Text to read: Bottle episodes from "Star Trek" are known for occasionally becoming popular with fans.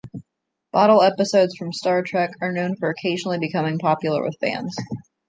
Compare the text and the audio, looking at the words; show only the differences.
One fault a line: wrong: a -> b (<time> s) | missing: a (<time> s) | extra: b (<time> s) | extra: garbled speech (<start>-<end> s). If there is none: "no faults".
no faults